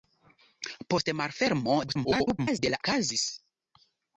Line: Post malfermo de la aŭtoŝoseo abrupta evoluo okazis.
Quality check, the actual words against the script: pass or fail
fail